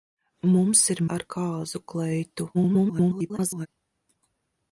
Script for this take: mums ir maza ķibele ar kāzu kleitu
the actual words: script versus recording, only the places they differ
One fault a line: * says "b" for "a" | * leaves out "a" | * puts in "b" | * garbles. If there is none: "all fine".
* leaves out "maza ķibele"
* garbles